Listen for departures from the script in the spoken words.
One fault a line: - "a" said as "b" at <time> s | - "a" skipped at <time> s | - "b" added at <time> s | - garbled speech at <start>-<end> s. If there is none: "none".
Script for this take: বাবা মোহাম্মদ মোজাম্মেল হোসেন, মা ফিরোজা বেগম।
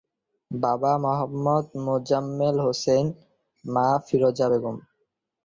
none